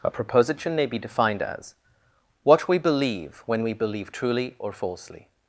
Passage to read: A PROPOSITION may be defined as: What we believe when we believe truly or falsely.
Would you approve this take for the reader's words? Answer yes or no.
yes